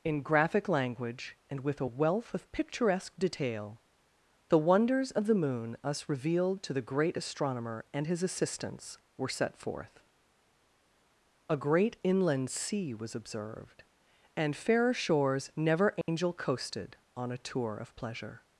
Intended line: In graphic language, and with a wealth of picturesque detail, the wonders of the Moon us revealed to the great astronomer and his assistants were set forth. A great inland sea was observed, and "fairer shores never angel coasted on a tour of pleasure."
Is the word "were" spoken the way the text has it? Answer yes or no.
yes